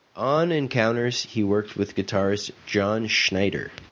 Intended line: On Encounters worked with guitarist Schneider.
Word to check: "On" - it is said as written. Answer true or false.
true